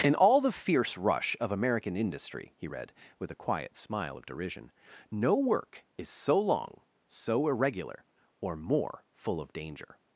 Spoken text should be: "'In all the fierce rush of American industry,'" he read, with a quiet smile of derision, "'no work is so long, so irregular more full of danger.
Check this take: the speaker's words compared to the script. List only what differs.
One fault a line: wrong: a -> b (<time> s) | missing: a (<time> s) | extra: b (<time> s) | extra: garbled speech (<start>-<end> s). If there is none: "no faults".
extra: or (8.4 s)